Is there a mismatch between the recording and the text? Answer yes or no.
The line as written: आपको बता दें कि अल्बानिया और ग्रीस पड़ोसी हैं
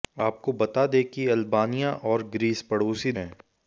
no